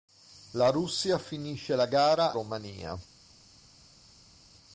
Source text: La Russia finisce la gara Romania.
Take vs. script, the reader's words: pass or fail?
pass